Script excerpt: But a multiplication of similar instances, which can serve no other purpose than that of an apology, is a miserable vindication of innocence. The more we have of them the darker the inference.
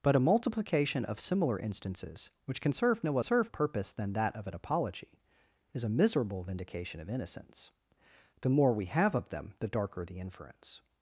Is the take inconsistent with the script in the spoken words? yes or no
yes